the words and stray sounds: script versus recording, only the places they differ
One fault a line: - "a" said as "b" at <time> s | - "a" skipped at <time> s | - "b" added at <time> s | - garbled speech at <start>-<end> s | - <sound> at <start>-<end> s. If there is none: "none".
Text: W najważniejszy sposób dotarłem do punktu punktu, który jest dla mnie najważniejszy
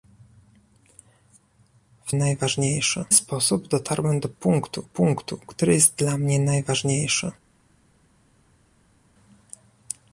none